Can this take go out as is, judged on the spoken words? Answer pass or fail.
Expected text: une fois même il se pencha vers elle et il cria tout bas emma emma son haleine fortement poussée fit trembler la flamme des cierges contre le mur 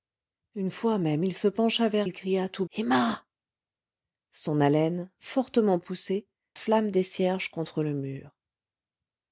fail